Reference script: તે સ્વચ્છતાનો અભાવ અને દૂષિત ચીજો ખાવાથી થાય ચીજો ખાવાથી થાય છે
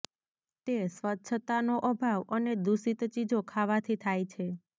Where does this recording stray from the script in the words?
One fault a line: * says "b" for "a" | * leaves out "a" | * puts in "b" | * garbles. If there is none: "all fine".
* leaves out "ચીજો ખાવાથી થાય"